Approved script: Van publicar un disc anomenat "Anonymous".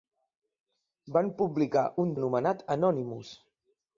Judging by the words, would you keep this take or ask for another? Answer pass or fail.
fail